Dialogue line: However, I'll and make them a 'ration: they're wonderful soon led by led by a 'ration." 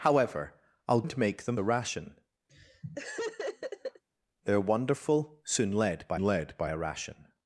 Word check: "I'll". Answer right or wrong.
right